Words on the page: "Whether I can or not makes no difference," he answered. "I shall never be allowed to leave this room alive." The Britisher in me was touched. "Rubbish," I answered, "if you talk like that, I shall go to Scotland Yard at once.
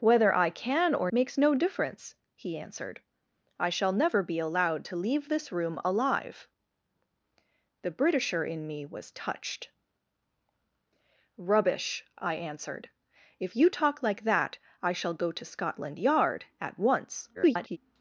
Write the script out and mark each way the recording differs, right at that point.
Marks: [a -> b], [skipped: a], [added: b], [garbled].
"Whether I can or [skipped: not] makes no difference," he answered. "I shall never be allowed to leave this room alive." The Britisher in me was touched. "Rubbish," I answered, "if you talk like that, I shall go to Scotland Yard at once. [garbled]